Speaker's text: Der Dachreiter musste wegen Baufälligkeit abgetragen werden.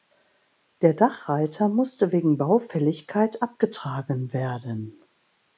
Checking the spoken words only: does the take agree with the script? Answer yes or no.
yes